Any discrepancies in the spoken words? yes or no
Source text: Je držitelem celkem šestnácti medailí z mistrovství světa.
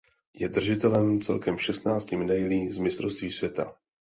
no